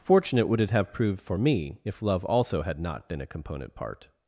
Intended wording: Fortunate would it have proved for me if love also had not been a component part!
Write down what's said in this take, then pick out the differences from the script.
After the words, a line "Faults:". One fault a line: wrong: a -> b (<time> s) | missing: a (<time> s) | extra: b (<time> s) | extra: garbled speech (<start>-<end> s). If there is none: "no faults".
Fortunate would it have proved for me if love also had not been a component part!
Faults:
no faults